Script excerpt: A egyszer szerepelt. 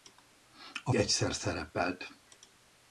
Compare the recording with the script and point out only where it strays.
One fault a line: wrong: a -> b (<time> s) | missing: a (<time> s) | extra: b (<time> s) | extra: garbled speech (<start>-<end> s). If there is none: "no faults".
no faults